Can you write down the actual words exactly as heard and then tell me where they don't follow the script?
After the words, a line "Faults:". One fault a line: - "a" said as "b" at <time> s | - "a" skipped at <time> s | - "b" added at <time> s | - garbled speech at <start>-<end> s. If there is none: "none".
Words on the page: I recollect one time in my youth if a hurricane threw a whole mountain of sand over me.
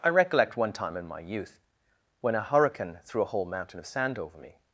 I recollect one time in my youth when a hurricane threw a whole mountain of sand over me.
Faults:
- "if" said as "when" at 2.2 s